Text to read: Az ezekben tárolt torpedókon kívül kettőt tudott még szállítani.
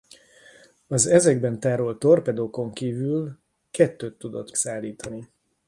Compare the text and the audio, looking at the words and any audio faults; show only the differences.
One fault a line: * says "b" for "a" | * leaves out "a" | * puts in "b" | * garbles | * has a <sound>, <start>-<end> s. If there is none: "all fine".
* leaves out "még"